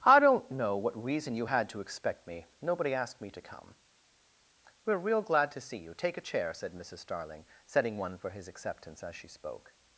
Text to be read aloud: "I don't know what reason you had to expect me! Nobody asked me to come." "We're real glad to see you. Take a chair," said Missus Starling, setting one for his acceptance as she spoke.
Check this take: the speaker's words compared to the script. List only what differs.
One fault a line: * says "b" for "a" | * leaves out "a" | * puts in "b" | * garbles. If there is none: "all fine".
all fine